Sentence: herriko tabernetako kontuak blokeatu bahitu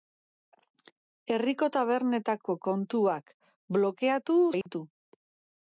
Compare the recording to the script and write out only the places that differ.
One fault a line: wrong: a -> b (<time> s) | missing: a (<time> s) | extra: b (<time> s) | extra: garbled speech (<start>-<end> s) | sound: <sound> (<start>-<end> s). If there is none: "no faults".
sound: dropout (4.6-4.7 s)